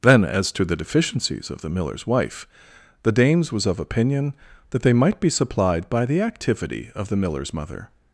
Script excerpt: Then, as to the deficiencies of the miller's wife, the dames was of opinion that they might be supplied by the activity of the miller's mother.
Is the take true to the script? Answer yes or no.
yes